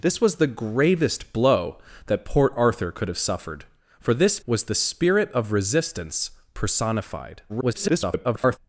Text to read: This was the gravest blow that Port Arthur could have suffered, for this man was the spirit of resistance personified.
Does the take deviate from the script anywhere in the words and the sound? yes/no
yes